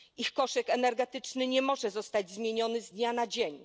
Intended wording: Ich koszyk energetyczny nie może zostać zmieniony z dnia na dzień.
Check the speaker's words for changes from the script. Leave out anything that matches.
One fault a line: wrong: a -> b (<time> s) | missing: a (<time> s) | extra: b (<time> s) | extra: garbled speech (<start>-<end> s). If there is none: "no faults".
no faults